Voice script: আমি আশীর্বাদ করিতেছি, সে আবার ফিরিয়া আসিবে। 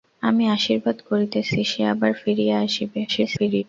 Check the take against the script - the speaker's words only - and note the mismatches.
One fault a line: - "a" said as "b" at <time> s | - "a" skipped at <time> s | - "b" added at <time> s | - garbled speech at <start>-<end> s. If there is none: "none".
- garbled speech at 3.1-3.6 s